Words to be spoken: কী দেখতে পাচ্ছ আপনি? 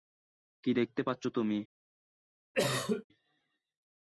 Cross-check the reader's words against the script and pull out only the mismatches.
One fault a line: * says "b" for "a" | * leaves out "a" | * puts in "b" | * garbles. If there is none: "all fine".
* says "তুমি" for "আপনি"